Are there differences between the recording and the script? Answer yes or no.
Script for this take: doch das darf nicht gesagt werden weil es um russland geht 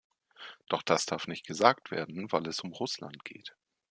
no